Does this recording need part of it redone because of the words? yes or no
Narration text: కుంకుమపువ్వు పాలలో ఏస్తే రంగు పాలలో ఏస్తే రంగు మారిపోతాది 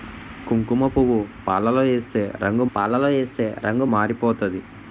no